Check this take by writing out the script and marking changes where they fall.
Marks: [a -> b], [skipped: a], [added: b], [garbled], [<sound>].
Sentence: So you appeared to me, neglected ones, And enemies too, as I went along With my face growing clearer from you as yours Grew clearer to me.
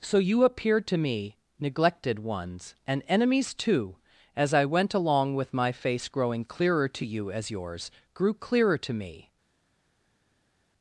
So you appeared to me, neglected ones, And enemies too, as I went along With my face growing clearer [from -> to] you as yours Grew clearer to me.